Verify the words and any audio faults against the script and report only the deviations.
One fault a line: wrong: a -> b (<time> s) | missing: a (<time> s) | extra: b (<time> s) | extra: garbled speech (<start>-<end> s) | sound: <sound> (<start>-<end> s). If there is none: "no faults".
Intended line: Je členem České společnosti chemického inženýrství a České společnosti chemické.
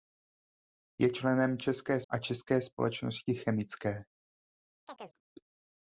missing: společnosti chemického inženýrství (2.0 s)
sound: chirp (4.9-5.2 s)